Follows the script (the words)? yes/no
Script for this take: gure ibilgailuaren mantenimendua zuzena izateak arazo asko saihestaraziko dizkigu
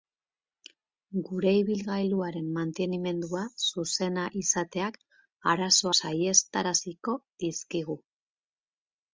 no